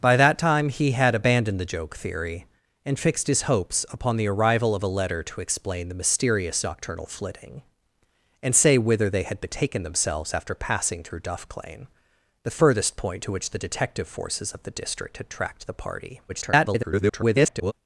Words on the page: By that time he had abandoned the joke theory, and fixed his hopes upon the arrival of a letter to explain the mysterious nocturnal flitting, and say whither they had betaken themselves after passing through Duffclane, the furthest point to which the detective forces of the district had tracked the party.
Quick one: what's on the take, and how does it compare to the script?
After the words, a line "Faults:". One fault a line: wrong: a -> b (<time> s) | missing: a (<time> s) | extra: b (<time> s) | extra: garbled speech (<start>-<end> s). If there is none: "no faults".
By that time he had abandoned the joke theory, and fixed his hopes upon the arrival of a letter to explain the mysterious nocturnal flitting, and say whither they had betaken themselves after passing through Duffclane, the furthest point to which the detective forces of the district had tracked the party. [garbled]
Faults:
extra: garbled speech (16.3-17.7 s)